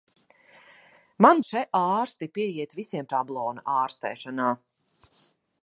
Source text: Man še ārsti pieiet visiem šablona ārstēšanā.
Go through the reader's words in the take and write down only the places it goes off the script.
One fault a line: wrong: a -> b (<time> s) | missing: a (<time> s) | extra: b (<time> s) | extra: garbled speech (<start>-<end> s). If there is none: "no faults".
no faults